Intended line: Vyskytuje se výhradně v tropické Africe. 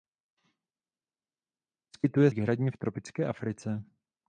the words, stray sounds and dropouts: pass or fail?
fail